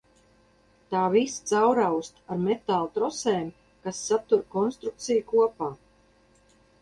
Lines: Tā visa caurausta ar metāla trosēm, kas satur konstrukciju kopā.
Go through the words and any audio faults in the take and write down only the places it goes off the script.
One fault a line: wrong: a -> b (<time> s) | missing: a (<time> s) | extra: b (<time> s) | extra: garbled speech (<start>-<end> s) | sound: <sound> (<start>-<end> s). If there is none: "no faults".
no faults